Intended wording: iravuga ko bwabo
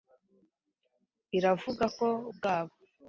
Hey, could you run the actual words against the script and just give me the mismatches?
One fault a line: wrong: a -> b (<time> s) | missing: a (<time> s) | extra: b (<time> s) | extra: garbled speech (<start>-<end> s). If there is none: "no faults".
no faults